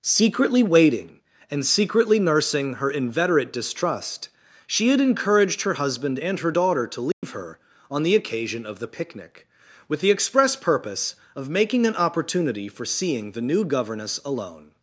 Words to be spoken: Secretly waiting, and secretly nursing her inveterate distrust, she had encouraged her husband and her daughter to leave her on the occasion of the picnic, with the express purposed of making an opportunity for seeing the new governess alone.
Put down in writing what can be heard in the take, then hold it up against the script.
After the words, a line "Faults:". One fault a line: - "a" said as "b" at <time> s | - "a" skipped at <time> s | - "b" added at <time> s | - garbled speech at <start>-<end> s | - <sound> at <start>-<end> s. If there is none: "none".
Secretly waiting, and secretly nursing her inveterate distrust, she had encouraged her husband and her daughter to leave her on the occasion of the picnic, with the express purpose of making an opportunity for seeing the new governess alone.
Faults:
- dropout at 7.1-7.2 s
- "purposed" said as "purpose" at 10.6 s